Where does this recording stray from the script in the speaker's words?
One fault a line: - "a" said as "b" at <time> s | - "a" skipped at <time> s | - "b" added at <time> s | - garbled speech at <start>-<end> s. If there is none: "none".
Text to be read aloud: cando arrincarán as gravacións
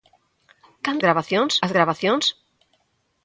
- "arrincarán" said as "gravacións" at 1.0 s